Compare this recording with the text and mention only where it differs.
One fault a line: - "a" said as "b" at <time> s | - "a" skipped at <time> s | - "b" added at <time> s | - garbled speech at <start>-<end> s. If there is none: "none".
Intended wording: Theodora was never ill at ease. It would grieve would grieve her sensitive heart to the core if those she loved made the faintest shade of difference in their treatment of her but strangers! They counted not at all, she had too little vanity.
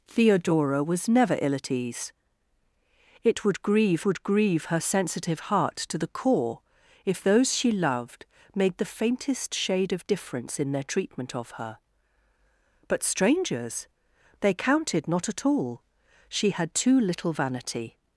none